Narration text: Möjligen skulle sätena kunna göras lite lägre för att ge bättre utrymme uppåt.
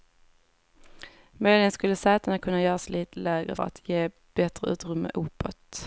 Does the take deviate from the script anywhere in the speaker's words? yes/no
yes